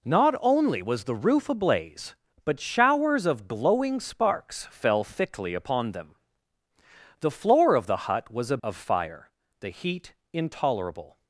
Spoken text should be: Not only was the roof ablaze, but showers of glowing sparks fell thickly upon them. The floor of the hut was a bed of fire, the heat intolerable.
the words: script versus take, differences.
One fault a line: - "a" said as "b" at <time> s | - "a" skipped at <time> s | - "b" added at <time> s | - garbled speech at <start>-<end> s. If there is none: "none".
- "bed" skipped at 8.6 s